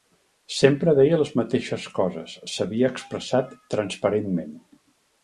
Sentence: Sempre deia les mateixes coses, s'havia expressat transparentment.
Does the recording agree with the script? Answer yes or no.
yes